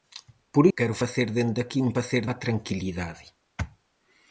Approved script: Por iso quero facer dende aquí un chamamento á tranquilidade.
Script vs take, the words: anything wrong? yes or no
yes